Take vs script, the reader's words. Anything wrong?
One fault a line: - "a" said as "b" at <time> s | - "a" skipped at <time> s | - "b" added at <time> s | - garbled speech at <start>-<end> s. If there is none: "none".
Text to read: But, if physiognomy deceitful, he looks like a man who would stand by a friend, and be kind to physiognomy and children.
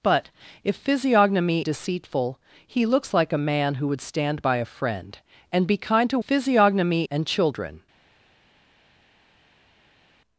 none